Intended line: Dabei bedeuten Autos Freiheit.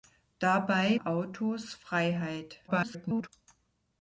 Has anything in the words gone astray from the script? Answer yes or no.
yes